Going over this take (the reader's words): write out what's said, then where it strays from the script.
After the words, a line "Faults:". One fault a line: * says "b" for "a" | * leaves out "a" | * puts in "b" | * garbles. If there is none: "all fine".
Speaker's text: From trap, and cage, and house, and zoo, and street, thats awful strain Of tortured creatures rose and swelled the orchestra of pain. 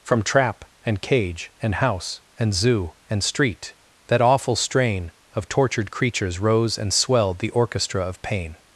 From trap, and cage, and house, and zoo, and street, that awful strain Of tortured creatures rose and swelled the orchestra of pain.
Faults:
* says "that" for "thats"